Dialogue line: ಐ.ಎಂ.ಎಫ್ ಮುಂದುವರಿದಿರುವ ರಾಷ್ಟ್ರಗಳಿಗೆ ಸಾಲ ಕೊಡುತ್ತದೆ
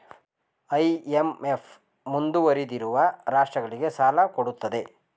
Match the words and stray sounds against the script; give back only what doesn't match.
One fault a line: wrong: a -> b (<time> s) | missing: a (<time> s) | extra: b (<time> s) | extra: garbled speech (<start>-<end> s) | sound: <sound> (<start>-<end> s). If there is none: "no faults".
no faults